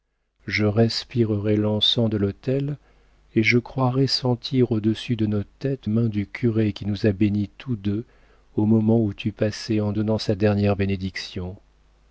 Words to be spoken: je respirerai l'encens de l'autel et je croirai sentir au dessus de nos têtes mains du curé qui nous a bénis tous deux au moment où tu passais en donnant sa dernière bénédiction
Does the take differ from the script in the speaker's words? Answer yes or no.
no